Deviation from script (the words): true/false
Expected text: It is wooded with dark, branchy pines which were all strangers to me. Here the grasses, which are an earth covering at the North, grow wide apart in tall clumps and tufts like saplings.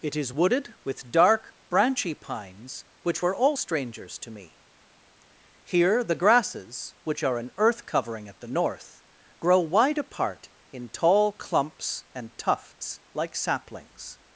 false